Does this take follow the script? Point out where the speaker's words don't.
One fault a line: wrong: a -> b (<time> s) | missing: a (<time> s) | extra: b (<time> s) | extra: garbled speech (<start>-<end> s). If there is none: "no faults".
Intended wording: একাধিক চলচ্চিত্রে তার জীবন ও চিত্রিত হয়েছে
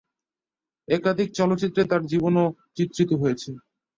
no faults